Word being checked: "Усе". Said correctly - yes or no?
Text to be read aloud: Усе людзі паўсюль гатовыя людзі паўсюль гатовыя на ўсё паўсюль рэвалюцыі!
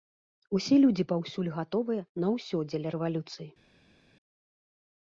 yes